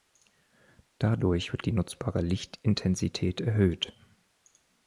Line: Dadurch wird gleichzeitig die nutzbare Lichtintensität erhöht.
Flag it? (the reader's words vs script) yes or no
yes